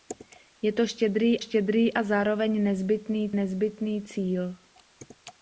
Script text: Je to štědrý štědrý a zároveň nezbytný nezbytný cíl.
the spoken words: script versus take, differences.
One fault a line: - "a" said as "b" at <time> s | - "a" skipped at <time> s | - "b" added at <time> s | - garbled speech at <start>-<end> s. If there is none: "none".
none